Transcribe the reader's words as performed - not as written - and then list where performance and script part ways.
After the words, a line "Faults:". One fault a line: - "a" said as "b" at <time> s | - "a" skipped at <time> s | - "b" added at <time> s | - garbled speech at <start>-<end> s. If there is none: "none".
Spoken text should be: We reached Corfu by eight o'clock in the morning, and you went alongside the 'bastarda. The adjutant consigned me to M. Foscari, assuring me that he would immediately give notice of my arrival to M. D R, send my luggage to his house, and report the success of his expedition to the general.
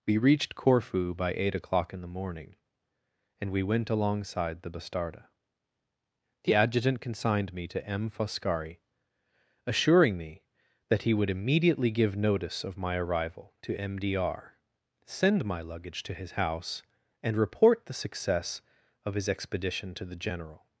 We reached Corfu by eight o'clock in the morning, and we went alongside the 'bastarda. The adjutant consigned me to M. Foscari, assuring me that he would immediately give notice of my arrival to M. D R, send my luggage to his house, and report the success of his expedition to the general.
Faults:
- "you" said as "we" at 3.5 s